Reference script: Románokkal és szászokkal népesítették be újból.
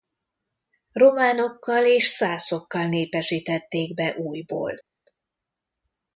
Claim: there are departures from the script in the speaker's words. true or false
false